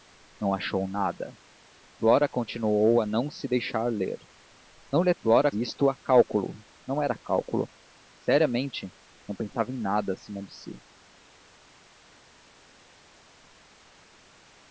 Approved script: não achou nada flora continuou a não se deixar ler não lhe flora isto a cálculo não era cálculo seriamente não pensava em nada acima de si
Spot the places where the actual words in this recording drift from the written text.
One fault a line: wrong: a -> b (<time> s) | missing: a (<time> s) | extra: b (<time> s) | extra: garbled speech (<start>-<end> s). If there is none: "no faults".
no faults